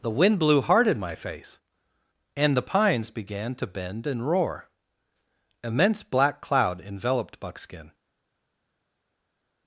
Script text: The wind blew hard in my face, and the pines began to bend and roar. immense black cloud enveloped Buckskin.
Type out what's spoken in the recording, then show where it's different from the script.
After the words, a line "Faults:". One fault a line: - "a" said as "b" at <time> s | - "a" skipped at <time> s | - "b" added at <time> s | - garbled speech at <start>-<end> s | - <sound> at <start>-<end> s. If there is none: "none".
The wind blew hard in my face, and the pines began to bend and roar. immense black cloud enveloped Buckskin.
Faults:
none